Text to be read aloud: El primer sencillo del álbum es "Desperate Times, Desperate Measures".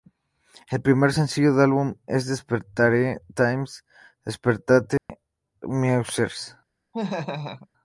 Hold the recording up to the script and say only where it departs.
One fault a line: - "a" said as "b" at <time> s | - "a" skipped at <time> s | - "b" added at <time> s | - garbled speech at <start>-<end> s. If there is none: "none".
none